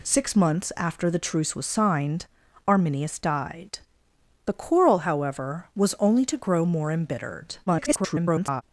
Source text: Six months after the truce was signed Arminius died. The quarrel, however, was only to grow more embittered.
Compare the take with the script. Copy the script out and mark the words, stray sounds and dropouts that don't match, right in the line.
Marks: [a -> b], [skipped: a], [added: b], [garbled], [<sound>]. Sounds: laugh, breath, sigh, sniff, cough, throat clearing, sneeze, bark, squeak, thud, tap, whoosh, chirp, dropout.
Six months after the truce was signed Arminius died. The quarrel, however, was only to grow more embittered. [garbled]